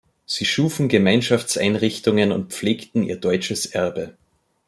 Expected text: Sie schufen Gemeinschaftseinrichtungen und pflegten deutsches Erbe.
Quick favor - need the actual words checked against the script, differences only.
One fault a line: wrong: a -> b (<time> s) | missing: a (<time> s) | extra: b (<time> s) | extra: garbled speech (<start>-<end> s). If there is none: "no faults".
extra: ihr (3.0 s)